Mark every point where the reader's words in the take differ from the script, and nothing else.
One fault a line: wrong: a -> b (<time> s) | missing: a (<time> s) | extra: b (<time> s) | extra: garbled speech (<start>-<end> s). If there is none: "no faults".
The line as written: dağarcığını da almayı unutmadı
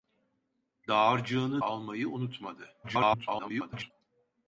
missing: da (1.6 s)
extra: garbled speech (2.8-3.9 s)